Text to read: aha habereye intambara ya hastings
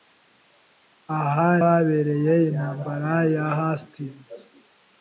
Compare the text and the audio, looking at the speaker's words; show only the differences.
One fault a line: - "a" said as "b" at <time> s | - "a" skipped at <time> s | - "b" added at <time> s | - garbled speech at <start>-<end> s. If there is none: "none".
none